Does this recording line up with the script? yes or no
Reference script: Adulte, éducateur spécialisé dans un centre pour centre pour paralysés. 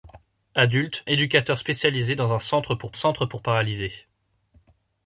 yes